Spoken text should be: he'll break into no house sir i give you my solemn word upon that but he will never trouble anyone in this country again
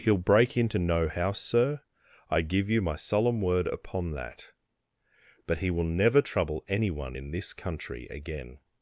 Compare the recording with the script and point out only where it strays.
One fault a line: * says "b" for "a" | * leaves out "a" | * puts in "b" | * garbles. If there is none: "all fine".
all fine